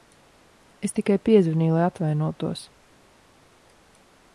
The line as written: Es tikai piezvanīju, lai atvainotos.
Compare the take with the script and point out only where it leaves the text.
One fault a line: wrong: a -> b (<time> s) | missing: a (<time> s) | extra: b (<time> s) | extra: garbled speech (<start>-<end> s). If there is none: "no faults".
no faults